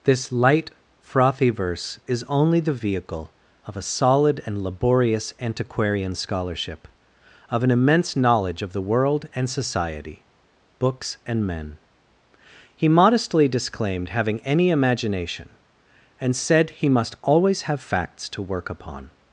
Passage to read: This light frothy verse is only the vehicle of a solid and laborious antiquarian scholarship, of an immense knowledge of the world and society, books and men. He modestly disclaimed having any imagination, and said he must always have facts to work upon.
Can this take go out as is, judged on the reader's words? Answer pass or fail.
pass